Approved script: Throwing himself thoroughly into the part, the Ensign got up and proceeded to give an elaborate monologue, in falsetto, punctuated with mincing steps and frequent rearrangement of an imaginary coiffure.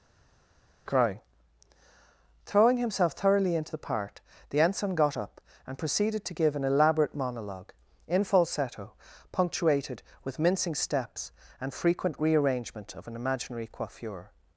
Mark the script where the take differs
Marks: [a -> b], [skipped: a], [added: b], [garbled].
[added: crying] Throwing himself thoroughly into the part, the Ensign got up and proceeded to give an elaborate monologue, in falsetto, punctuated with mincing steps and frequent rearrangement of an imaginary coiffure.